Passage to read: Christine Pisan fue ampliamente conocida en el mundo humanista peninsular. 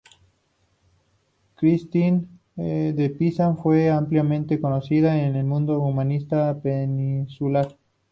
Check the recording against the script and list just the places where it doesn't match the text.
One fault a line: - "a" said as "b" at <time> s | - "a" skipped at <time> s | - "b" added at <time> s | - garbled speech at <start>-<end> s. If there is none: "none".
- "de" added at 2.5 s